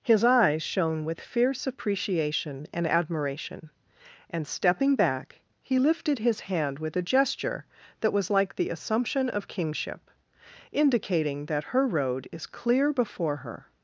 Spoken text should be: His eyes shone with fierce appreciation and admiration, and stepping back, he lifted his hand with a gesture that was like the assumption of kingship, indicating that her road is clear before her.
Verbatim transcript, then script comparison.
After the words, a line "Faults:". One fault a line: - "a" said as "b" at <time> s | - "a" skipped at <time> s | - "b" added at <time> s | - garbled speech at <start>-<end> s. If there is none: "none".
His eyes shone with fierce appreciation and admiration, and stepping back, he lifted his hand with a gesture that was like the assumption of kingship, indicating that her road is clear before her.
Faults:
none